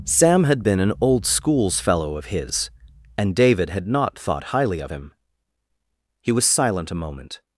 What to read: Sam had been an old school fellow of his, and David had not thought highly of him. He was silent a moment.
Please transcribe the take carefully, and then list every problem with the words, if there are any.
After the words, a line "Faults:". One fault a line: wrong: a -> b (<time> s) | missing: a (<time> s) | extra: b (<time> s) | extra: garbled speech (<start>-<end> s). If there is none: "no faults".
Sam had been an old schools fellow of his, and David had not thought highly of him. He was silent a moment.
Faults:
wrong: school -> schools (1.2 s)